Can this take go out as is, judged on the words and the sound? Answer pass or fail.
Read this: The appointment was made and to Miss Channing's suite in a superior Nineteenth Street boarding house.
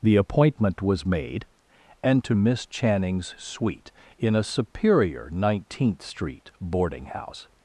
pass